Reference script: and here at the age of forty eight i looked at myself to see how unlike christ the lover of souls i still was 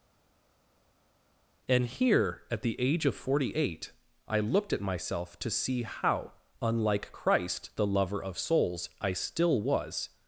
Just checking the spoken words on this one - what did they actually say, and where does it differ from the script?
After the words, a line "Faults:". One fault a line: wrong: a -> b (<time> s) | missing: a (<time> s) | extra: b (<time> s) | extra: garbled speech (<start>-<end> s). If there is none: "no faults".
and here at the age of forty eight i looked at myself to see how unlike christ the lover of souls i still was
Faults:
no faults